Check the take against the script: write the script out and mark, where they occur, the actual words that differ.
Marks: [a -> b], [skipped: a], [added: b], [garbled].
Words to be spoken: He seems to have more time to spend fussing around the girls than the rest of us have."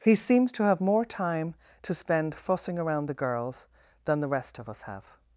He seems to have more time to spend fussing around the girls than the rest of us have."